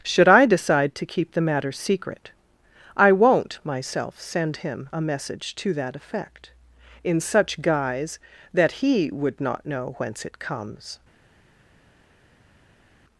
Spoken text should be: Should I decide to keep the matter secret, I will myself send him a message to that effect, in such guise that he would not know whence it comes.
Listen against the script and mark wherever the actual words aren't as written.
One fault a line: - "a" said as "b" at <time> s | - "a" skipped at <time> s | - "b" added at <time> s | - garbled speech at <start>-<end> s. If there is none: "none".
- "will" said as "won't" at 3.1 s